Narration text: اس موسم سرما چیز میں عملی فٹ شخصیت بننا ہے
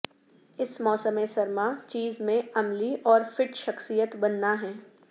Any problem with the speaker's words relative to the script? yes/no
yes